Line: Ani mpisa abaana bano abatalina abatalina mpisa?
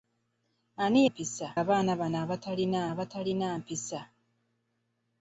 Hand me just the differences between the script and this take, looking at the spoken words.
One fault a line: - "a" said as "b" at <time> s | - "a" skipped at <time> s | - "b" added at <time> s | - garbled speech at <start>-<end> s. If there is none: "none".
none